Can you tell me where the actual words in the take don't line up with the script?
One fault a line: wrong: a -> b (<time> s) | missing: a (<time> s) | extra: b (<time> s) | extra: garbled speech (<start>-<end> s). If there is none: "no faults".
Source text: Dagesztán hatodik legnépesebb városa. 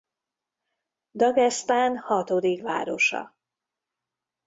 missing: legnépesebb (2.6 s)